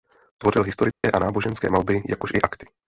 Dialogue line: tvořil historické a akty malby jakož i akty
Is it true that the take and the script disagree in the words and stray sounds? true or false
true